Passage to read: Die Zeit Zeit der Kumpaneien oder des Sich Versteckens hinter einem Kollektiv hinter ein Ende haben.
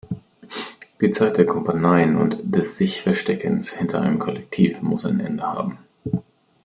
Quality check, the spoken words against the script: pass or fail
fail